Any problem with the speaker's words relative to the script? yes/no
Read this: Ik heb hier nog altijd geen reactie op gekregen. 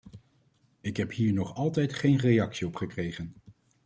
no